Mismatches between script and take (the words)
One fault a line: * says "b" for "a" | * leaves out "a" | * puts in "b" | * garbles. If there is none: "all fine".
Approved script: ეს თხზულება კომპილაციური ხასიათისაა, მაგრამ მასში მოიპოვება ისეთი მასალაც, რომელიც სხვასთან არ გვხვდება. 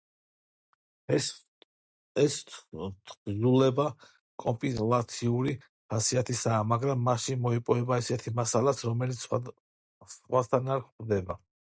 all fine